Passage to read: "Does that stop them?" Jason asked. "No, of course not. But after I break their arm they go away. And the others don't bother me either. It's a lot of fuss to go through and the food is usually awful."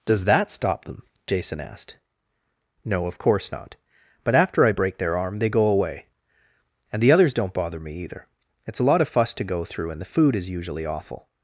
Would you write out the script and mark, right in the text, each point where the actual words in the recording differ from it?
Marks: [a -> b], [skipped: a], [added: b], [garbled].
"Does that stop them?" Jason asked. "No, of course not. But after I break their arm they go away. And the others don't bother me either. It's a lot of fuss to go through and the food is usually awful."